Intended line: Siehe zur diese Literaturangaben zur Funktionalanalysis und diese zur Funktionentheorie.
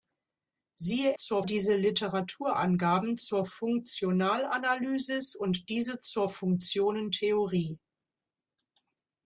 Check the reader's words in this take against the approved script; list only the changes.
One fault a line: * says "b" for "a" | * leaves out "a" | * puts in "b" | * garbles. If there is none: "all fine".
all fine